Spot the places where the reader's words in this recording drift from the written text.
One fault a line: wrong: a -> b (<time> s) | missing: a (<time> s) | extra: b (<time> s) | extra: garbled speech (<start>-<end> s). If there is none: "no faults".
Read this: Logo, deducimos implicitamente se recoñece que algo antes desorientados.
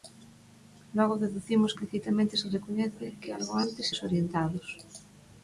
no faults